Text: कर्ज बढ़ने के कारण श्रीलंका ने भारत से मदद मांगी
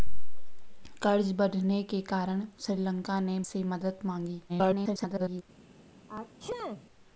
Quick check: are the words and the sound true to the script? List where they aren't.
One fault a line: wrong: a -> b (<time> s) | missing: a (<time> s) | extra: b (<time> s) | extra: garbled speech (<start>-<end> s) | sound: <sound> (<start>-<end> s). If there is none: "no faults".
missing: भारत (3.4 s)
extra: garbled speech (4.5-5.4 s)
sound: sneeze (6.1-6.8 s)